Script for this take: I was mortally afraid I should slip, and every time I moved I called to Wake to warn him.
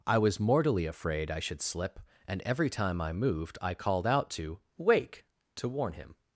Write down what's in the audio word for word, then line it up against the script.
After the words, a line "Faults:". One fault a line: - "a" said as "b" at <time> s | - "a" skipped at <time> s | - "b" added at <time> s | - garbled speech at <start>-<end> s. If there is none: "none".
I was mortally afraid I should slip, and every time I moved I called out to Wake to warn him.
Faults:
- "out" added at 4.1 s